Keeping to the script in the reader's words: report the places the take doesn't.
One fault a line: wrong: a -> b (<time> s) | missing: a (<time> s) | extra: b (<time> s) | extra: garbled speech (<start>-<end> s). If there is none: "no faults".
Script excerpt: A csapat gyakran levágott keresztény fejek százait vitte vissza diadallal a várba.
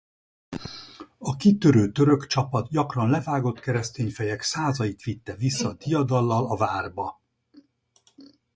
extra: kitörő török (1.4 s)